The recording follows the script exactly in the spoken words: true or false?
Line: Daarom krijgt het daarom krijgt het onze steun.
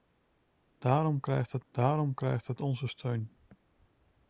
true